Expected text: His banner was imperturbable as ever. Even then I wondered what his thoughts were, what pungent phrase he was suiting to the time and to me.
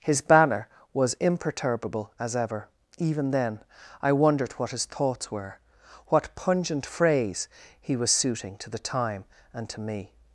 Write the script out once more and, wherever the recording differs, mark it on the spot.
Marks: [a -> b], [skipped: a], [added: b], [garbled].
His banner was imperturbable as ever. Even then I wondered what his thoughts were, what pungent phrase he was suiting to the time and to me.